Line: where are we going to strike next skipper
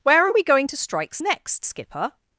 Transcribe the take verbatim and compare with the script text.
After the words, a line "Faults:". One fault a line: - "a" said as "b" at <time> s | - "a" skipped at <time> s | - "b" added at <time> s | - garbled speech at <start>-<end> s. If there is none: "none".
where are we going to strikes next skipper
Faults:
- "strike" said as "strikes" at 0.8 s